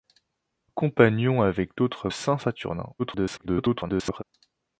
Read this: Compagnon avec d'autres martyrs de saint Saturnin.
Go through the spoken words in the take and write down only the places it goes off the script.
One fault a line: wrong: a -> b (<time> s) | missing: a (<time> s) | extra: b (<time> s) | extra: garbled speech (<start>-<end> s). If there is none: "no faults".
missing: martyrs de (2.1 s)
extra: garbled speech (3.0-4.2 s)